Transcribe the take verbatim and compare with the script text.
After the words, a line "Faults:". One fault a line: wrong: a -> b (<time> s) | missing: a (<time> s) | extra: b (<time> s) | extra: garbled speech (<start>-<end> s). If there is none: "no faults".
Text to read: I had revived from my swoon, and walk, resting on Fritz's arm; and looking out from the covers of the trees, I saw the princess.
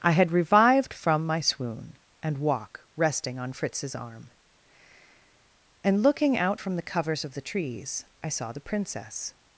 I had revived from my swoon, and walk, resting on Fritz's arm; and looking out from the covers of the trees, I saw the princess.
Faults:
no faults